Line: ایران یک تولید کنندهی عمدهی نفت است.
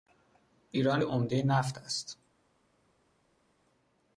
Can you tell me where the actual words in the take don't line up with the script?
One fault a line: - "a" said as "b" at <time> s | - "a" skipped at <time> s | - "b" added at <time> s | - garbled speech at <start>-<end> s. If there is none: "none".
- "یک تولید کنندهی" skipped at 1.0 s